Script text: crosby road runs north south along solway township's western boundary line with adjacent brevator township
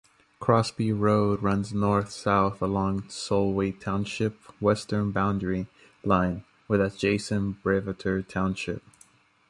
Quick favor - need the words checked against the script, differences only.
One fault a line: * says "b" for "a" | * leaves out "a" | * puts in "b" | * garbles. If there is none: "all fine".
all fine